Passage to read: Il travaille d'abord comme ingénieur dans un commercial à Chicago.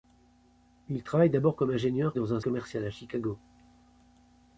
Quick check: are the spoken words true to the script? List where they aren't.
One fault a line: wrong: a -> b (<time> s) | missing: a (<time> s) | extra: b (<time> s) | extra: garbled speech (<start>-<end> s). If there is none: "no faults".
no faults